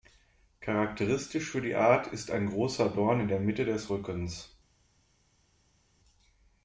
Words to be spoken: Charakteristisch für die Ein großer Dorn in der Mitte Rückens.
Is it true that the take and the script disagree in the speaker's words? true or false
true